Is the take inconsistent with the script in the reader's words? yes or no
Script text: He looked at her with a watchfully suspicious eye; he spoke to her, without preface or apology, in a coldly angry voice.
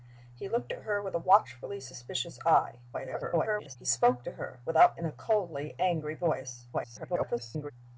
yes